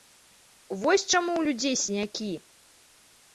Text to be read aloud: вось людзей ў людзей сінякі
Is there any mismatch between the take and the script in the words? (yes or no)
yes